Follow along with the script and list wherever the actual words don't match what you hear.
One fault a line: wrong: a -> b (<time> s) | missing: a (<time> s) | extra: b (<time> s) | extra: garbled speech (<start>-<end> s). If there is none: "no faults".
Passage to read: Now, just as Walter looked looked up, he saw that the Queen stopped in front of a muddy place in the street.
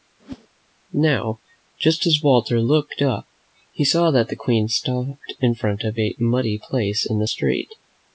missing: looked (3.0 s)